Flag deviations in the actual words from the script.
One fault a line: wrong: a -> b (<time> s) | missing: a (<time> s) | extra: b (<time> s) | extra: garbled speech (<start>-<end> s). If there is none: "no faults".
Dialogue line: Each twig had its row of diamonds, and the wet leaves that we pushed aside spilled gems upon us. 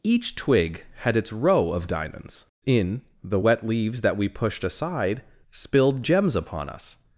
wrong: and -> in (2.6 s)